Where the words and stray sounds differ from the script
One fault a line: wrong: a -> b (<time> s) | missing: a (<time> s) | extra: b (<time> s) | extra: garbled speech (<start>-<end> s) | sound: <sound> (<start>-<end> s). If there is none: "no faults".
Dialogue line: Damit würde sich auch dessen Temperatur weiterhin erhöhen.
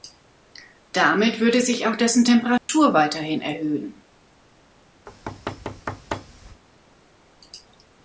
sound: dropout (2.6-2.7 s)
sound: thud (5.1-6.6 s)